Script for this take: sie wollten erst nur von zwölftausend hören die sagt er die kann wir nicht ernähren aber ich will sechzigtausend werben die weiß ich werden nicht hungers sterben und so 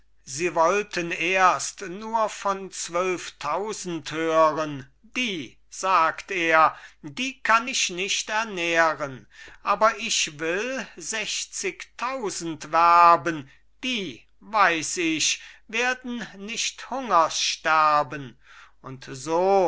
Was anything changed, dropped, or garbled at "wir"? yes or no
yes